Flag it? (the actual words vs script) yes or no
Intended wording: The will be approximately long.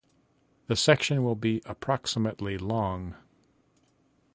yes